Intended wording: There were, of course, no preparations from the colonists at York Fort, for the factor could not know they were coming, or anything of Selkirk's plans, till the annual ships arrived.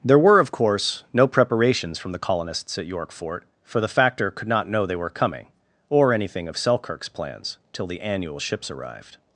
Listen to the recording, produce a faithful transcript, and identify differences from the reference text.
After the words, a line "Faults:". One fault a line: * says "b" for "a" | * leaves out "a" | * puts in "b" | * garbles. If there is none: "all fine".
There were, of course, no preparations from the colonists at York Fort, for the factor could not know they were coming, or anything of Selkirk's plans, till the annual ships arrived.
Faults:
all fine